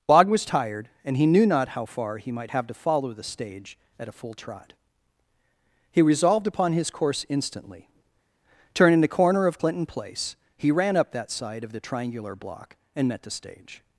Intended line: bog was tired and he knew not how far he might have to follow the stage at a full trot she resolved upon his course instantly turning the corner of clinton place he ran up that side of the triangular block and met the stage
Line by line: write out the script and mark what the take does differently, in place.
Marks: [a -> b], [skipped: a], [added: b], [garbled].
bog was tired and he knew not how far he might have to follow the stage at a full trot [she -> he] resolved upon his course instantly turning the corner of clinton place he ran up that side of the triangular block and met the stage